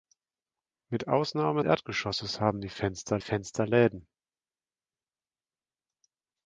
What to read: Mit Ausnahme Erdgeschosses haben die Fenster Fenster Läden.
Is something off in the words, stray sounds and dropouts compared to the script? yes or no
no